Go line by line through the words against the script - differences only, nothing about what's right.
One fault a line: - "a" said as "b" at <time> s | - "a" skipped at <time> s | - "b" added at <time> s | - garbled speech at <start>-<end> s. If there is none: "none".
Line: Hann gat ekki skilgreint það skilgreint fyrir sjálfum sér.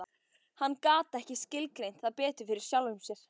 - "skilgreint" said as "betur" at 2.2 s